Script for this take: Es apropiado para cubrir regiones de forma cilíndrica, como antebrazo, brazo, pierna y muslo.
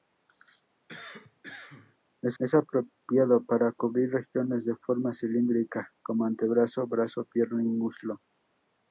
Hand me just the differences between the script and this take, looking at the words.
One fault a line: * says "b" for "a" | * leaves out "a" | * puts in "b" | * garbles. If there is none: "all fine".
* puts in "es"